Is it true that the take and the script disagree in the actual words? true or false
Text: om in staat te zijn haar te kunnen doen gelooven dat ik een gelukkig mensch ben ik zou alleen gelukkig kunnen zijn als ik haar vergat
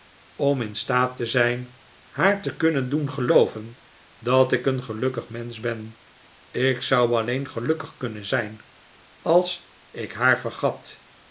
false